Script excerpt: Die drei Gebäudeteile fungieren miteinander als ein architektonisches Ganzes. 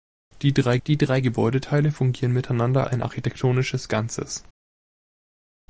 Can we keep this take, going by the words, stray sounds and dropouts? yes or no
no